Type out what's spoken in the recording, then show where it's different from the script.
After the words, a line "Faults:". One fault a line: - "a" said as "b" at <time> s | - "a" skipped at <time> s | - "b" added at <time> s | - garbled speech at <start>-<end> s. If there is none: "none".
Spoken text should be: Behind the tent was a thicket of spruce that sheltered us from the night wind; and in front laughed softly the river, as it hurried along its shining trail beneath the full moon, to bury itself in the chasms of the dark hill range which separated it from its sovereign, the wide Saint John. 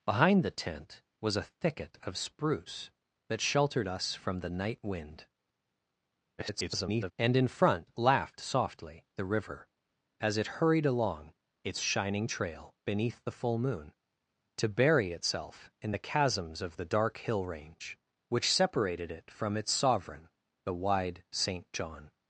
Behind the tent was a thicket of spruce that sheltered us from the night wind; [garbled] and in front laughed softly the river, as it hurried along its shining trail beneath the full moon, to bury itself in the chasms of the dark hill range which separated it from its sovereign, the wide Saint John.
Faults:
- garbled speech at 6.4-7.1 s